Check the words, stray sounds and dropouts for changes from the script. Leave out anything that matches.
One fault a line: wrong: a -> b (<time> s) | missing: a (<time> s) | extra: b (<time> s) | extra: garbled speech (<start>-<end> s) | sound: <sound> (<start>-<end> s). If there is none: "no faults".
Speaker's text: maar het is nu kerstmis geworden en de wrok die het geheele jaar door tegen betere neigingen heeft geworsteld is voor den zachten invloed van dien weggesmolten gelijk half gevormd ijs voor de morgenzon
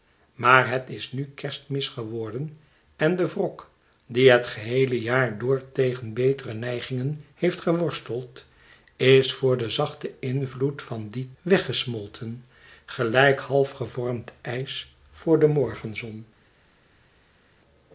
no faults